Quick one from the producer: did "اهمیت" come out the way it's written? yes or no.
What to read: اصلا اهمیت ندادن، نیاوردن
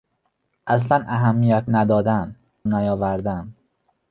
yes